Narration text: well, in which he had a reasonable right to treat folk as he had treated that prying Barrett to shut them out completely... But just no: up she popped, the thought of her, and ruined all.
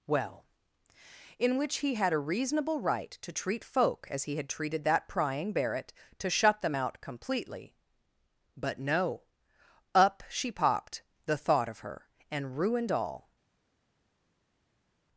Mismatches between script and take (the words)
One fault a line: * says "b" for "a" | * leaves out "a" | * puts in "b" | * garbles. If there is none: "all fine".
* leaves out "just"